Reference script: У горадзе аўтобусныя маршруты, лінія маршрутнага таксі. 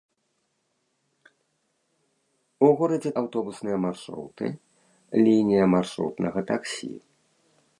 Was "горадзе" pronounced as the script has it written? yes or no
yes